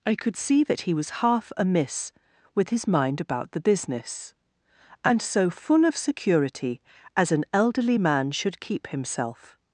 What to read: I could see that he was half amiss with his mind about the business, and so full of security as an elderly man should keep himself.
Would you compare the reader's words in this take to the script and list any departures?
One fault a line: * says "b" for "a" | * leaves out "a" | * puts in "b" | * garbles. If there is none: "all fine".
all fine